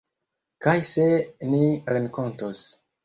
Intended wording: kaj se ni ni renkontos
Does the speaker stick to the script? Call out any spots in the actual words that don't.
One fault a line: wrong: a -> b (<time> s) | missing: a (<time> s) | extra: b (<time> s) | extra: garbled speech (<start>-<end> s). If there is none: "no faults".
missing: ni (1.6 s)